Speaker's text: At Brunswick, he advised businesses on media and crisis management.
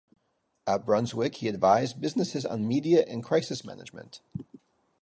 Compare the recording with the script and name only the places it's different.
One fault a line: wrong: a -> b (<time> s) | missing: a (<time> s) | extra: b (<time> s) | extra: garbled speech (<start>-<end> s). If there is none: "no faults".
no faults